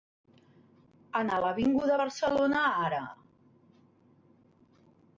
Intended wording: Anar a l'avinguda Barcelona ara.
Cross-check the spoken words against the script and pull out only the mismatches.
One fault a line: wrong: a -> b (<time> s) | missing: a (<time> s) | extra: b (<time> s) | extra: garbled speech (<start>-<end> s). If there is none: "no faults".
no faults